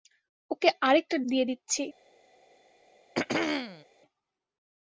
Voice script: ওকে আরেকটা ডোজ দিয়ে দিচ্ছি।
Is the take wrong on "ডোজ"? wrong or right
wrong